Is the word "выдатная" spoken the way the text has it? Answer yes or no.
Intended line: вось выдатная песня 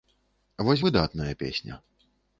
yes